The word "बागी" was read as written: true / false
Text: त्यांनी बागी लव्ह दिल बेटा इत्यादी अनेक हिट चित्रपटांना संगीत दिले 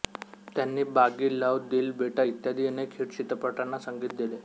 true